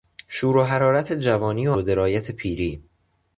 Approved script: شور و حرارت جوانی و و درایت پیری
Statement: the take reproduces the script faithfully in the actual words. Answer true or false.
true